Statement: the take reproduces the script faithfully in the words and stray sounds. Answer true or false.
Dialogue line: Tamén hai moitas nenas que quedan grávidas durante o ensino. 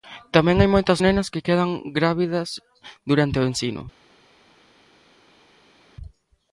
true